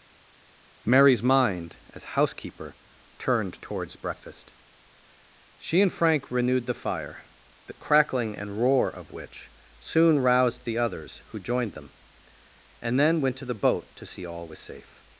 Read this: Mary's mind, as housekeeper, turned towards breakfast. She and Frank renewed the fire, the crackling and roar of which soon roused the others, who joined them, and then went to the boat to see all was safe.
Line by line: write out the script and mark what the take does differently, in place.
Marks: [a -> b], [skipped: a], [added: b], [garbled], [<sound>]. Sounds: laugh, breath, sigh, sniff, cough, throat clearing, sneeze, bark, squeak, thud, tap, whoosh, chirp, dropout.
Mary's mind, as housekeeper, turned towards breakfast. She and Frank renewed the fire, the crackling and roar of which soon roused the others, who joined them, and then went to the boat to see all was safe.